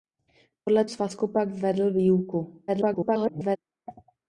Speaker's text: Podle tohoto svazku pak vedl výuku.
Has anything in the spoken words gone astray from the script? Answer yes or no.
yes